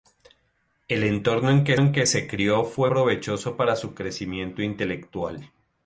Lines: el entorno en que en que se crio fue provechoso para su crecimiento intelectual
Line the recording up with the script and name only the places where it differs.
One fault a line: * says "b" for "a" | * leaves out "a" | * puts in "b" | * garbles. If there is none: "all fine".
all fine